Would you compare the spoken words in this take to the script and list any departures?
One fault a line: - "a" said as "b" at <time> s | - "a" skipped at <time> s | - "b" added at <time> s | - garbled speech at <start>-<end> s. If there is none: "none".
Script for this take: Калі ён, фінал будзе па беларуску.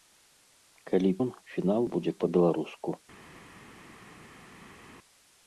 none